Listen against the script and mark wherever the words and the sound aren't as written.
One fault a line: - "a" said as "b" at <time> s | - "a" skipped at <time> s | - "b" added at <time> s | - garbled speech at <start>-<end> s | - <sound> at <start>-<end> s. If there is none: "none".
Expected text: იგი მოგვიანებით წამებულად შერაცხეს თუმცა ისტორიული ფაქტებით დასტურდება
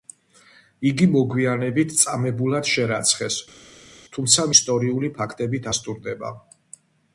none